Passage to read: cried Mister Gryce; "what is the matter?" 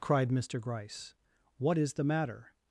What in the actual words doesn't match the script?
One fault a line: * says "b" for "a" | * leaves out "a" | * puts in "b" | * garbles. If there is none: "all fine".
all fine